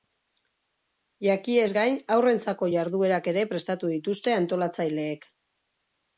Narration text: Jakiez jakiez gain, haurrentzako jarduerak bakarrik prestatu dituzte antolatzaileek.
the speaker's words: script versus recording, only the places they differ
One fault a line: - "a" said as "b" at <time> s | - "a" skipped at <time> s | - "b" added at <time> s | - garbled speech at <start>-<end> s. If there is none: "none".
- "jakiez" skipped at 1.7 s
- "bakarrik" said as "ere" at 3.3 s